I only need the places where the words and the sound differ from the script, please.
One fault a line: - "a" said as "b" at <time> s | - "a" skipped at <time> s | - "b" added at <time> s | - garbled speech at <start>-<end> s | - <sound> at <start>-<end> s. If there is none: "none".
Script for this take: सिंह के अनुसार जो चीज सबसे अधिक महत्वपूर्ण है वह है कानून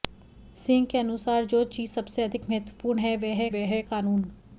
- "वह है" added at 3.5 s